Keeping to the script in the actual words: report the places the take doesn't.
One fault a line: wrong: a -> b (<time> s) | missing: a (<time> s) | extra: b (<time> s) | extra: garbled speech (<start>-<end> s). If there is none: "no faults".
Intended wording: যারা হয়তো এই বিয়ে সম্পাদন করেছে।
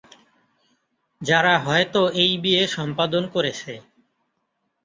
no faults